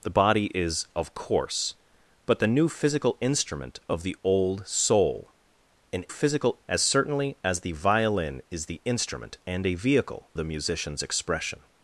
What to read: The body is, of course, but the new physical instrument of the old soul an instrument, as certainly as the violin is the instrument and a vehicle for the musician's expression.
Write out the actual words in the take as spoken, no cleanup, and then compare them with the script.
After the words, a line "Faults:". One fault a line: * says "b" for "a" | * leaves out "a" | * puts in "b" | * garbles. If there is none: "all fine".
The body is, of course, but the new physical instrument of the old soul an physical, as certainly as the violin is the instrument and a vehicle the musician's expression.
Faults:
* says "physical" for "instrument"
* leaves out "for"